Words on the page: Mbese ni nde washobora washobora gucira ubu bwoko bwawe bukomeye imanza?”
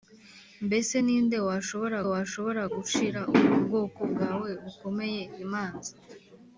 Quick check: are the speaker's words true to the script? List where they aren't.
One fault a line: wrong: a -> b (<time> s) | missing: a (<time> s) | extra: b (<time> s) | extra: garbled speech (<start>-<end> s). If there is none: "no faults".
no faults